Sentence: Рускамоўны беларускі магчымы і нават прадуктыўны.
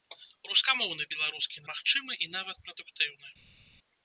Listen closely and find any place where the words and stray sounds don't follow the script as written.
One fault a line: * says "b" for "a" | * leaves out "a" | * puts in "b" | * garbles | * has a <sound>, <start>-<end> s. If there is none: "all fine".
all fine